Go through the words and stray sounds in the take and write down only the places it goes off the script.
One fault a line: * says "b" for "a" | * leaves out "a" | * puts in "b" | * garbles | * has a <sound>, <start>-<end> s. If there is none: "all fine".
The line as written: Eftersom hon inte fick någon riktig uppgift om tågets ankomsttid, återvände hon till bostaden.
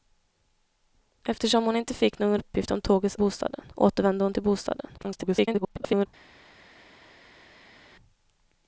* leaves out "riktig"
* says "bostaden" for "ankomsttid"
* garbles